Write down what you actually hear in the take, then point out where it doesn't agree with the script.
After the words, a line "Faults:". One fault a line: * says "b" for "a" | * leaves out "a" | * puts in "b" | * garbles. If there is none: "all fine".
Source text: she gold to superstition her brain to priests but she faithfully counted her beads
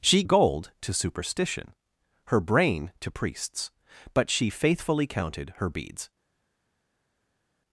she gold to superstition her brain to priests but she faithfully counted her beads
Faults:
all fine